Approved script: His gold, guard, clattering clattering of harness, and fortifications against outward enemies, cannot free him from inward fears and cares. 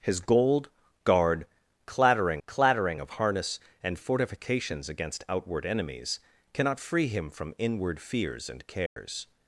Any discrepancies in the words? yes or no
no